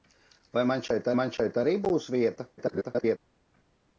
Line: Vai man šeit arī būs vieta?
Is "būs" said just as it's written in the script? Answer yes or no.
yes